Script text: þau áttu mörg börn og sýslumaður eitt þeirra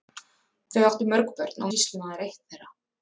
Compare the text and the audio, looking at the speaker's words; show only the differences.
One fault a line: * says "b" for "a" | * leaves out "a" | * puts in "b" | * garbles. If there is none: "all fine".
all fine